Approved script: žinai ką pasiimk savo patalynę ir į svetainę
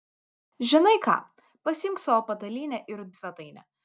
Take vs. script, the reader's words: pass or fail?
pass